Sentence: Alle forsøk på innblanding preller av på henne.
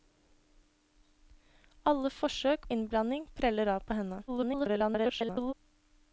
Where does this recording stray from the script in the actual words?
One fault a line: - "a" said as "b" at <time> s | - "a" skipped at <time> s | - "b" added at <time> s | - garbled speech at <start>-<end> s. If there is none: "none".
- "på" skipped at 2.6 s
- garbled speech at 4.3-5.5 s